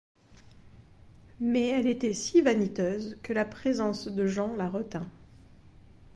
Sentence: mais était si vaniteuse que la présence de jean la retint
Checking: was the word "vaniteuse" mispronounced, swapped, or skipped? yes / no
no